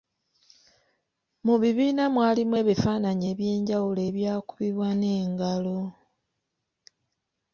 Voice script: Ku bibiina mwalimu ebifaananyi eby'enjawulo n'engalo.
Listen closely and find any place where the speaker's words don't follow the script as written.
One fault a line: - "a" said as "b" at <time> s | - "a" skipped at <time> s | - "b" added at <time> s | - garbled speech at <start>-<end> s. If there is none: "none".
- "Ku" said as "Mu" at 1.4 s
- "ebyakubibwa" added at 4.1 s